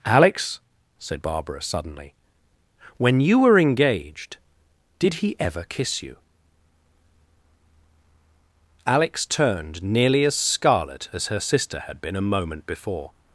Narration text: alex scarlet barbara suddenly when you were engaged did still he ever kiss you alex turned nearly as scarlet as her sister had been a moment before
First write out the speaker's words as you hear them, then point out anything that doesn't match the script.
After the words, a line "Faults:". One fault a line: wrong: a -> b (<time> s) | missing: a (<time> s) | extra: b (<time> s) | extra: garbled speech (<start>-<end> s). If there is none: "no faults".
alex said barbara suddenly when you were engaged did he ever kiss you alex turned nearly as scarlet as her sister had been a moment before
Faults:
wrong: scarlet -> said (1.0 s)
missing: still (5.2 s)